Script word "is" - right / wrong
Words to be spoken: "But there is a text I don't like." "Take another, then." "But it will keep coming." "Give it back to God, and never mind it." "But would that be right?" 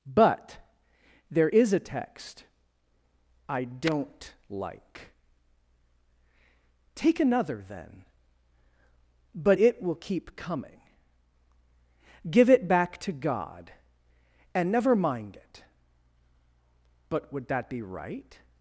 right